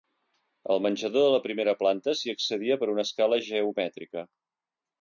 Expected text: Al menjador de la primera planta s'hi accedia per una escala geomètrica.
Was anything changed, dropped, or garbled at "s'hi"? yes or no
no